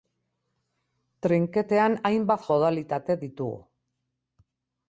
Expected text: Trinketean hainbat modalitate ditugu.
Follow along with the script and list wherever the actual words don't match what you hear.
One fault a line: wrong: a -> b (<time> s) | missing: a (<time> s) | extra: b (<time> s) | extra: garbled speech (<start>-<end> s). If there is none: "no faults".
no faults